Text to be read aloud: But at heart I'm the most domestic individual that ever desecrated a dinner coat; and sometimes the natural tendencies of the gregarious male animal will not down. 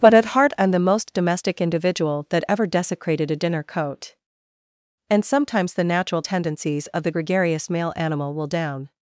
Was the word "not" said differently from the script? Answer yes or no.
yes